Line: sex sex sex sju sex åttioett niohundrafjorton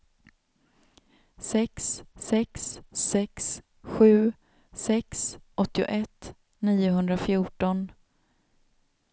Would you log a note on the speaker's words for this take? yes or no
no